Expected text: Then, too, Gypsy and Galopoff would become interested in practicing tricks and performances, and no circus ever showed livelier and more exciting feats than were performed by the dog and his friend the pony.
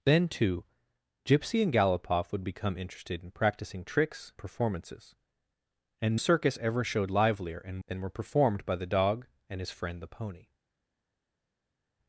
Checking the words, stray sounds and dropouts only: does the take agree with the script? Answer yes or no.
no